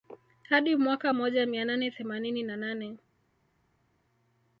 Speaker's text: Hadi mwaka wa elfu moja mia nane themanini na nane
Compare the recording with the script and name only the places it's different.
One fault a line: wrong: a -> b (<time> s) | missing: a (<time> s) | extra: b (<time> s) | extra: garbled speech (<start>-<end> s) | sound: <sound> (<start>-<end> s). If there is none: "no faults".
missing: wa elfu (1.1 s)